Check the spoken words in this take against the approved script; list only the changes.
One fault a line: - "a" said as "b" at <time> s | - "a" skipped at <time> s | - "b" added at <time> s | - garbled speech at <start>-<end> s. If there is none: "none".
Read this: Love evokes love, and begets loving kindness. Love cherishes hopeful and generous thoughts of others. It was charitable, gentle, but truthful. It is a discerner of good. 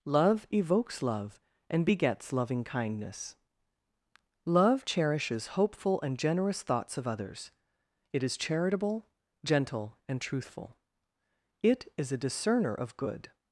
- "was" said as "is" at 8.2 s
- "but" said as "and" at 10.1 s